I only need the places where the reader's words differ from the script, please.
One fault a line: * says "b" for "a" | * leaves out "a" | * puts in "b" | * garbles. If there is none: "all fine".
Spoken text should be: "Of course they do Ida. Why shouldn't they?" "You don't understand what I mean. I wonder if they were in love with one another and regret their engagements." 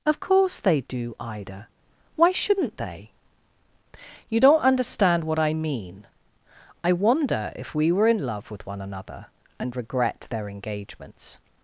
* says "we" for "they"